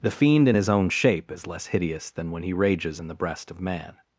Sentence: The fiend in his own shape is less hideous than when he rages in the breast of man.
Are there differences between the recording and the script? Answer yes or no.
no